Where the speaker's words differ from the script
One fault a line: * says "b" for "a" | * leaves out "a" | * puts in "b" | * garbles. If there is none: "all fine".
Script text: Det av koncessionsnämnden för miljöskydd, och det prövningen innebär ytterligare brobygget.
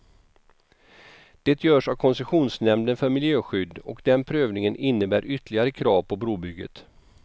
* puts in "görs"
* says "den" for "det"
* puts in "krav på"